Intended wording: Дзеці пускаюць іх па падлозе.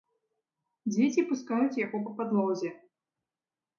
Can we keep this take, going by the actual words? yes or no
no